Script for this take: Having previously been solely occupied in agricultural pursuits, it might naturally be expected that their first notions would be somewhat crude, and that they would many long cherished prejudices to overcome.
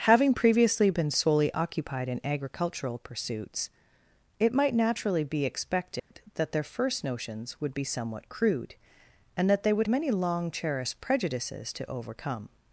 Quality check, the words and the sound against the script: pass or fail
fail